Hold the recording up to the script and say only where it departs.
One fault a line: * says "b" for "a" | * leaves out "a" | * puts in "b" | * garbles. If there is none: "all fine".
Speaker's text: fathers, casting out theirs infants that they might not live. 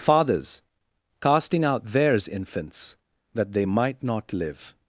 all fine